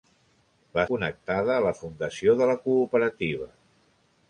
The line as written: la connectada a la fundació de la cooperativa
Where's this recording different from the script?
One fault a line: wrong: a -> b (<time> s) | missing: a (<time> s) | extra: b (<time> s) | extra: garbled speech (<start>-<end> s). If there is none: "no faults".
no faults